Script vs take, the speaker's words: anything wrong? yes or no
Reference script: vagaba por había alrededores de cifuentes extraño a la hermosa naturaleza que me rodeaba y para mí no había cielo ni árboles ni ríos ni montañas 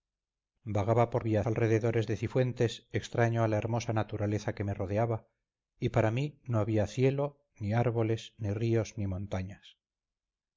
no